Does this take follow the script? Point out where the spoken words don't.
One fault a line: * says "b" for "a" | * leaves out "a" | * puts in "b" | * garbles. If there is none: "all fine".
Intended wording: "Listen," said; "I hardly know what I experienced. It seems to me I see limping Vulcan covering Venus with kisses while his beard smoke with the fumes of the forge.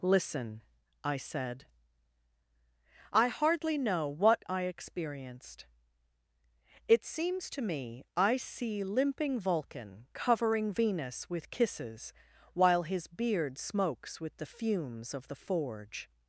* puts in "I"
* says "smokes" for "smoke"